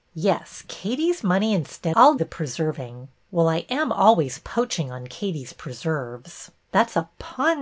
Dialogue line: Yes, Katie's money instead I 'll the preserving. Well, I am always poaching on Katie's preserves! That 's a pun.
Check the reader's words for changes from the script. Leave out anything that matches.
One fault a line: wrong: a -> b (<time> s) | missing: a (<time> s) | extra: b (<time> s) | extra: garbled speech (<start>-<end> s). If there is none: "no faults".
no faults